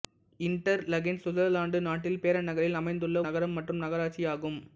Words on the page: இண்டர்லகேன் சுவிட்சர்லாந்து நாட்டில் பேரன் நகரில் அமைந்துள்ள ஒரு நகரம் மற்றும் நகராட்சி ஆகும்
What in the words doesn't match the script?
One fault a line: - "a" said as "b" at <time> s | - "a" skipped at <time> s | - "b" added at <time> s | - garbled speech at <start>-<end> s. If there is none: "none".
- "ஒரு" skipped at 3.2 s